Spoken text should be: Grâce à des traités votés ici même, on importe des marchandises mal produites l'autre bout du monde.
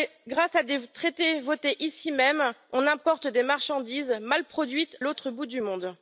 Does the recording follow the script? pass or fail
pass